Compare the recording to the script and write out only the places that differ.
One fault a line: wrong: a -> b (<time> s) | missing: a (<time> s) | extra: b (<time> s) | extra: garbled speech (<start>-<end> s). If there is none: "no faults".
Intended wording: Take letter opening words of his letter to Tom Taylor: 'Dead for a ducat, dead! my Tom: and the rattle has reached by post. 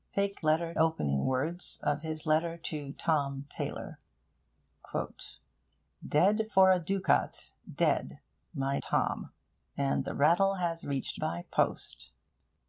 no faults